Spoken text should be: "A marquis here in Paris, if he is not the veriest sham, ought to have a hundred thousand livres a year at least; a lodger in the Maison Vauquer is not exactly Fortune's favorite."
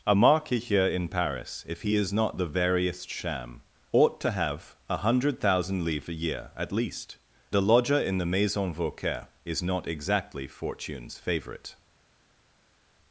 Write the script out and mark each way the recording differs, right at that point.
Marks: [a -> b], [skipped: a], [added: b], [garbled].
"A marquis here in Paris, if he is not the veriest sham, ought to have a hundred thousand livres a year at least; a lodger in the Maison Vauquer is not exactly Fortune's favorite."